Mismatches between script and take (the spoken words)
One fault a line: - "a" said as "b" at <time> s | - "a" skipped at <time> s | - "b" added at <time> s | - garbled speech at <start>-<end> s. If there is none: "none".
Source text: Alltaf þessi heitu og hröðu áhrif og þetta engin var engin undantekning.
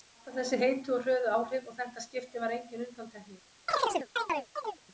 - "engin" said as "skipti" at 2.1 s